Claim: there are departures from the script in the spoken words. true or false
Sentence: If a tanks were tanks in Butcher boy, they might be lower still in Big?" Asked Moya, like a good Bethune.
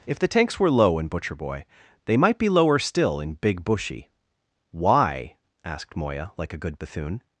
true